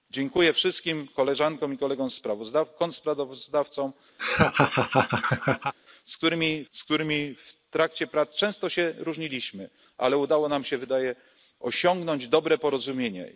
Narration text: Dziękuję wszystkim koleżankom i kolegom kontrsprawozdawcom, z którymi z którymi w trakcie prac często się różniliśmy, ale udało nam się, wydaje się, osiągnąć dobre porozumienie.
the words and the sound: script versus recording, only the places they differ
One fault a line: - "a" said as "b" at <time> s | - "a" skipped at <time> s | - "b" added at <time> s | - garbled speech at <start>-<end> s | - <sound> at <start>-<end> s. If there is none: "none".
- laugh at 4.2-5.7 s